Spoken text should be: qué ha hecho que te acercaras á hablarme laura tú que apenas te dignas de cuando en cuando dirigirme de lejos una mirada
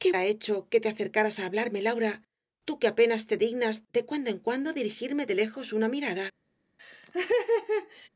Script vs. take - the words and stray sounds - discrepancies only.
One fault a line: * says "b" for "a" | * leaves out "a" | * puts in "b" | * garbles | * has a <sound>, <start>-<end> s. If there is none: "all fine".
* has a laugh, 6.8-8.1 s